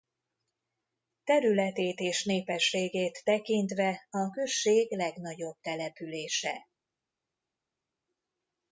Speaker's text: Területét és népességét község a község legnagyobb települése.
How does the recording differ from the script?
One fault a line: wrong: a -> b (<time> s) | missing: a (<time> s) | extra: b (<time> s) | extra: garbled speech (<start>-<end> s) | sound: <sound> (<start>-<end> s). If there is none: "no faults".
wrong: község -> tekintve (3.2 s)